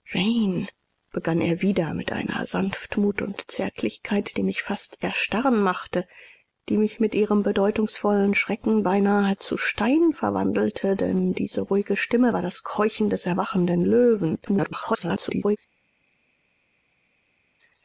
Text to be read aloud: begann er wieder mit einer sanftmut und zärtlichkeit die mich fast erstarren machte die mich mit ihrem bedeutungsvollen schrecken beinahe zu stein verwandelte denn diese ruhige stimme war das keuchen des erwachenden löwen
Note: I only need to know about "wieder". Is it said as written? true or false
true